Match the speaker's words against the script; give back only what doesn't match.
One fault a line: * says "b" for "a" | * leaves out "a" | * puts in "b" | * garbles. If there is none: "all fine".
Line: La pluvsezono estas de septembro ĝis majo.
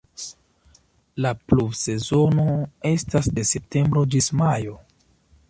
all fine